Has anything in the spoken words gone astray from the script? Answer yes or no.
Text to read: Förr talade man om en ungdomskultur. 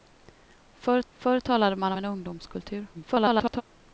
yes